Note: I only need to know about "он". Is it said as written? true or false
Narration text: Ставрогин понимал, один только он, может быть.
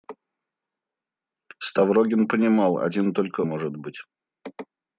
false